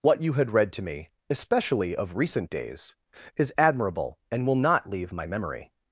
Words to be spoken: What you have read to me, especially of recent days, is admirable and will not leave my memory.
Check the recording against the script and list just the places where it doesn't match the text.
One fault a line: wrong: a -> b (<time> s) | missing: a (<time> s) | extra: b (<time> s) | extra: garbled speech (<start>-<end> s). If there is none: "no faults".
wrong: have -> had (0.3 s)